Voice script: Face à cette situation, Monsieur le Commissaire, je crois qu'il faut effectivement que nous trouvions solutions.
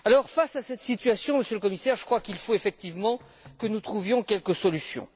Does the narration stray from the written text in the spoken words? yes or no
yes